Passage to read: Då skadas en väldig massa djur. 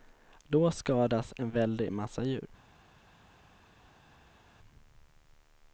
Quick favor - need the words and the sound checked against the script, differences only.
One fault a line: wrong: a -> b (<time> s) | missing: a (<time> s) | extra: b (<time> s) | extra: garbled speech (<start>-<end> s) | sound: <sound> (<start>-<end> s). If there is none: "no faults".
no faults